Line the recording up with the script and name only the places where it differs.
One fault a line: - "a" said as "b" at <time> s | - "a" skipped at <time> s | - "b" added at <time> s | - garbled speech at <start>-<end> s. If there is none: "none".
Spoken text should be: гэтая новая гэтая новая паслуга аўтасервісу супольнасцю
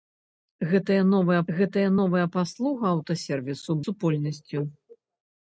none